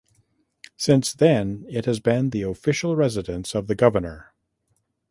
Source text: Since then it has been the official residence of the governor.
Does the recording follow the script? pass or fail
pass